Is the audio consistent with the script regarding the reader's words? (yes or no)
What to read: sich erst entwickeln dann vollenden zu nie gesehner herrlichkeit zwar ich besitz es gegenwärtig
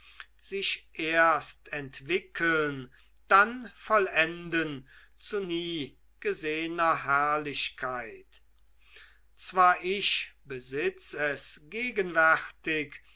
yes